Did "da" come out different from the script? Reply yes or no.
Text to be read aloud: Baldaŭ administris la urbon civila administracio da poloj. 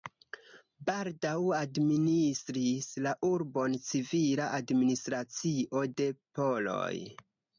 yes